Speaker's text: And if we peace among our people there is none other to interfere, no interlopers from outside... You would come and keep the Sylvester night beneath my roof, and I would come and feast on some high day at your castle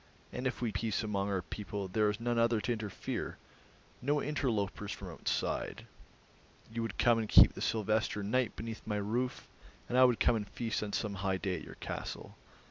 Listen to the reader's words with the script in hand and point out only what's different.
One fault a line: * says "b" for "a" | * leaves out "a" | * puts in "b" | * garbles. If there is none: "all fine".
all fine